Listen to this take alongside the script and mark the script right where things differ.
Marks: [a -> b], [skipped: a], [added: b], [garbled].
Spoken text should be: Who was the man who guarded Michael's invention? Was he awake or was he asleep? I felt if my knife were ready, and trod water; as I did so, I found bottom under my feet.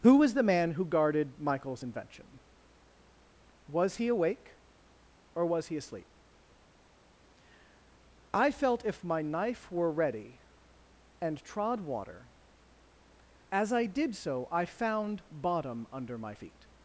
Who was the man who guarded Michael's invention? Was he awake or was he asleep? I felt if my knife were ready, and trod water; as I did so, I found bottom under my feet.